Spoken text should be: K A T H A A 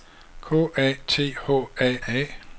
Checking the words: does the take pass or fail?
pass